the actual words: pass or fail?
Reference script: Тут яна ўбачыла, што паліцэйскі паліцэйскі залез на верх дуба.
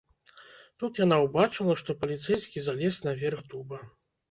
fail